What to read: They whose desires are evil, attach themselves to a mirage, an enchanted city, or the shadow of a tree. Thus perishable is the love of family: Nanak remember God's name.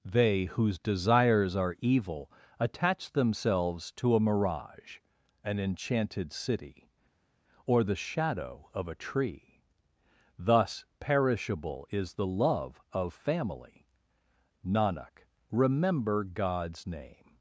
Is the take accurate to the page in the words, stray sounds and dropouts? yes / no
yes